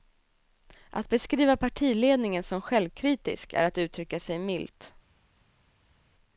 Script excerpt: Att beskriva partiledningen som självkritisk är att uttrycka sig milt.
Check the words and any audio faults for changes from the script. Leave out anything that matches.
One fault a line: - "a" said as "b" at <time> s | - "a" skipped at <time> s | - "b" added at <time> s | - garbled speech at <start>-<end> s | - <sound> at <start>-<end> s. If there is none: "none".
none